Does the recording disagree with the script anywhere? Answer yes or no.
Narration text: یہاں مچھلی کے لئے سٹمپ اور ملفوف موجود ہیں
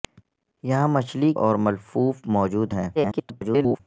yes